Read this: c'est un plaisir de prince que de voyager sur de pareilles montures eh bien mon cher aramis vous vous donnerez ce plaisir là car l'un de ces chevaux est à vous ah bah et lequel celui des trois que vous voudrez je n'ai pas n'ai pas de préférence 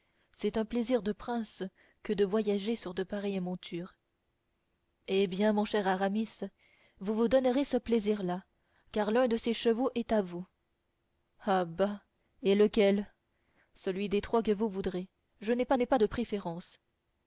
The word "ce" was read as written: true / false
true